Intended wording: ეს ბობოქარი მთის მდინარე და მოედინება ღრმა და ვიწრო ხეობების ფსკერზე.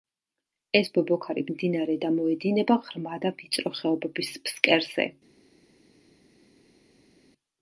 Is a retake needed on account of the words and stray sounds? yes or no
yes